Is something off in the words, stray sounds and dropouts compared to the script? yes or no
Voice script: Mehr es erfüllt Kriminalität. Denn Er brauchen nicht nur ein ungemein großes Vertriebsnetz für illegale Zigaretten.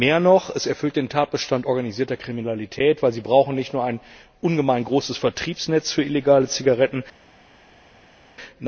yes